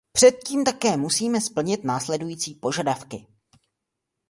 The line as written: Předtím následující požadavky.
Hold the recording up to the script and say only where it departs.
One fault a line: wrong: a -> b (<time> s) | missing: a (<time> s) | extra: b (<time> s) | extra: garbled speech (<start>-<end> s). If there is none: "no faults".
extra: také musíme splnit (0.6 s)